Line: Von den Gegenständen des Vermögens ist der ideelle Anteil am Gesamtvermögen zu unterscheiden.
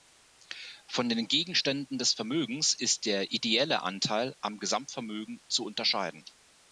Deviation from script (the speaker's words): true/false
false